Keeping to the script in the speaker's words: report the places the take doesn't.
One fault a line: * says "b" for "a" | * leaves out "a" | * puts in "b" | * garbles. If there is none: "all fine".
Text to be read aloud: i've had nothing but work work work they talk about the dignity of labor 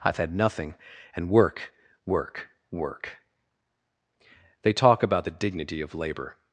* says "and" for "but"